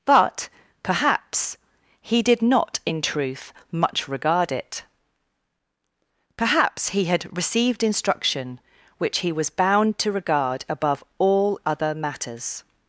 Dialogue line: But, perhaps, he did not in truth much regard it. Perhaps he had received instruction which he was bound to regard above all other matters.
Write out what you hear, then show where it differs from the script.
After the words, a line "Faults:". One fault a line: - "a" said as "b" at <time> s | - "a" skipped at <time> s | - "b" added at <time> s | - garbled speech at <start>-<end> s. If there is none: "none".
But, perhaps, he did not in truth much regard it. Perhaps he had received instruction which he was bound to regard above all other matters.
Faults:
none